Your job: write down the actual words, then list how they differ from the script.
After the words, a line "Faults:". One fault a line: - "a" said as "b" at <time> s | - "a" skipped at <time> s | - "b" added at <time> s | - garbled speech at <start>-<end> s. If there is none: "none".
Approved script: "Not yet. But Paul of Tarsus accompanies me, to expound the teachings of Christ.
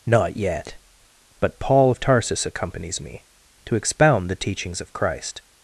"Not yet. But Paul of Tarsus accompanies me, to expound the teachings of Christ.
Faults:
none